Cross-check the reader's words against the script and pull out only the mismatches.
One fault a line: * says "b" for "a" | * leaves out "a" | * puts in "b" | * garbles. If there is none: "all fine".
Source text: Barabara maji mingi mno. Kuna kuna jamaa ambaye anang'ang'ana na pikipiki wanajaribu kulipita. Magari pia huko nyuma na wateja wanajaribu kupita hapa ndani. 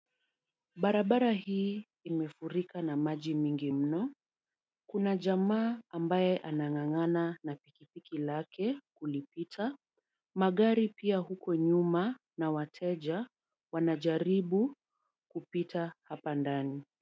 * puts in "hii imefurika na"
* leaves out "kuna"
* says "lake" for "wanajaribu"